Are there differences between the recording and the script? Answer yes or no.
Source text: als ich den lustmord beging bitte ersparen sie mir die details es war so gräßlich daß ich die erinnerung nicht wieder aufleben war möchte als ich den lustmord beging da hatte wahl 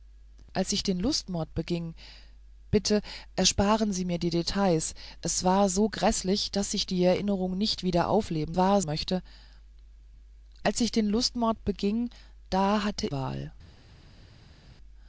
no